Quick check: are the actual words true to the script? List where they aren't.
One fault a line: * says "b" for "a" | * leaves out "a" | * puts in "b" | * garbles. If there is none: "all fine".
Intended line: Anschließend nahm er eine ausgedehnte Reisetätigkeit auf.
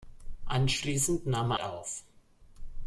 * leaves out "eine ausgedehnte Reisetätigkeit"